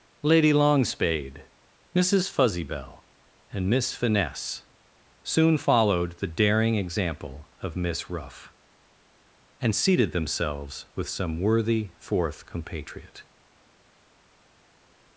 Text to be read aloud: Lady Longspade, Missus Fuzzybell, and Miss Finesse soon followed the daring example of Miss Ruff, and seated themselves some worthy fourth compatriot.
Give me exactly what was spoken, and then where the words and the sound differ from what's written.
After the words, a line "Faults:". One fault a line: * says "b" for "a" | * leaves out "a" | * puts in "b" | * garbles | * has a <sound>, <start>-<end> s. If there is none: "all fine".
Lady Longspade, Missus Fuzzybell, and Miss Finesse soon followed the daring example of Miss Ruff, and seated themselves with some worthy fourth compatriot.
Faults:
* puts in "with"